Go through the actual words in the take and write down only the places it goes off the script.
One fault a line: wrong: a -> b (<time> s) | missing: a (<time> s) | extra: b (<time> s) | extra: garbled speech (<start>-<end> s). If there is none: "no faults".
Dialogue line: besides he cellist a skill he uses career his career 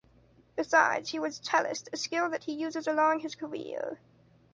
extra: was (1.2 s)
extra: that (2.3 s)
wrong: career -> along (2.9 s)